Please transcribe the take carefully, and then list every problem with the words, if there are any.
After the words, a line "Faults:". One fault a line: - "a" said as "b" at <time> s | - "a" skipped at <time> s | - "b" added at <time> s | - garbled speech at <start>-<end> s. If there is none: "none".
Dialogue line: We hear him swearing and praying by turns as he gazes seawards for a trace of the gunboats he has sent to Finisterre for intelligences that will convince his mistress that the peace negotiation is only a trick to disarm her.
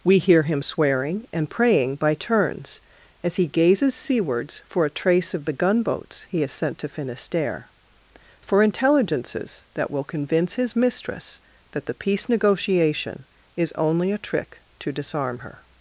We hear him swearing and praying by turns as he gazes seawards for a trace of the gunboats he has sent to Finisterre for intelligences that will convince his mistress that the peace negotiation is only a trick to disarm her.
Faults:
none